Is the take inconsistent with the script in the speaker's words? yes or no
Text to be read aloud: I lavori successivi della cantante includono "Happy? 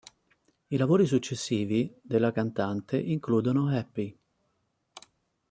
no